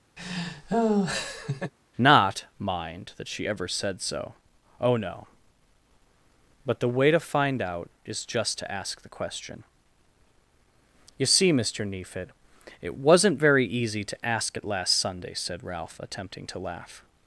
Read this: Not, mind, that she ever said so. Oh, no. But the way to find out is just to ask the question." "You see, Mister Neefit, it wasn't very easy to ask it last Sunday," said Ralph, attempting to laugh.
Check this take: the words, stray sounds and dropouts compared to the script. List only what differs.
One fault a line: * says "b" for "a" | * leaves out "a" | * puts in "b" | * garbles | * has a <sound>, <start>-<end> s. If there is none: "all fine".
* has a laugh, 0.2-1.7 s